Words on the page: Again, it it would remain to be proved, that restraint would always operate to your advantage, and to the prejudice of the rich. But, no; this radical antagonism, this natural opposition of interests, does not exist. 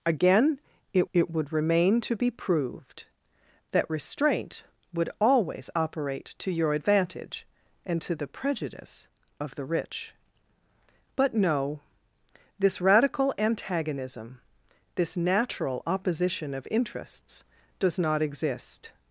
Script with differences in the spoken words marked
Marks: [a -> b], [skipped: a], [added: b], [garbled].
Again, it it would remain to be proved, that restraint would always operate to your advantage, and to the prejudice of the rich. But, no; this radical antagonism, this natural opposition of interests, does not exist.